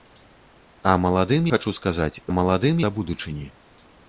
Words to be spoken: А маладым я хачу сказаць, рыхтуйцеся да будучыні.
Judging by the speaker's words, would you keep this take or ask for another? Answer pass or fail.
fail